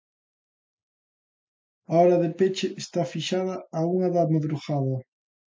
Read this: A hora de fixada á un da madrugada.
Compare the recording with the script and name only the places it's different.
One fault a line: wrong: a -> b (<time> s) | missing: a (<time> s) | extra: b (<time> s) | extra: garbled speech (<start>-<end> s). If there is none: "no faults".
extra: peche está (2.4 s)
wrong: un -> unha (3.9 s)